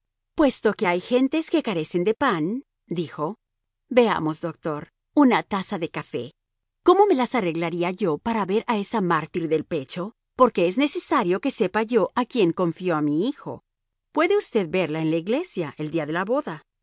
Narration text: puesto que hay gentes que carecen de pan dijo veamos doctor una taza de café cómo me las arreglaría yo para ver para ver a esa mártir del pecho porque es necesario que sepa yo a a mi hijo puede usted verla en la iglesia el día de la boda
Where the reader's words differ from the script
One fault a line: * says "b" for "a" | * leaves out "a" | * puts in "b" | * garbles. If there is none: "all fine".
* leaves out "para ver"
* puts in "quién confío"